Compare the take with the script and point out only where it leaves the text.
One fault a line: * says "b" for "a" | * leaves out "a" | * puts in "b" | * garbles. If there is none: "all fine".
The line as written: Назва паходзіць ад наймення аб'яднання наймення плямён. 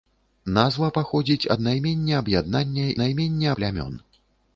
all fine